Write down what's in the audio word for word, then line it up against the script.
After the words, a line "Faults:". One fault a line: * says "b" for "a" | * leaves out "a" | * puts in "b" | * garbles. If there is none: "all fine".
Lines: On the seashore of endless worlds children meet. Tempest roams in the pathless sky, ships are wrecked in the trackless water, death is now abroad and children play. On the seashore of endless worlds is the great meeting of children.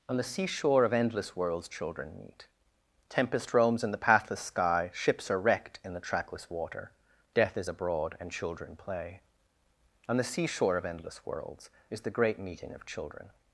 On the seashore of endless worlds children meet. Tempest roams in the pathless sky, ships are wrecked in the trackless water, death is abroad and children play. On the seashore of endless worlds is the great meeting of children.
Faults:
* leaves out "now"